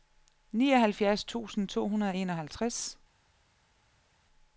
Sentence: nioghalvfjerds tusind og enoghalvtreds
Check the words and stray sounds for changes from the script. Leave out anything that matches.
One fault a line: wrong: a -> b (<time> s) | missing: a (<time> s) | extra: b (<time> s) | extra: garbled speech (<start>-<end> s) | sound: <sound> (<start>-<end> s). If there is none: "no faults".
extra: to hundrede (1.7 s)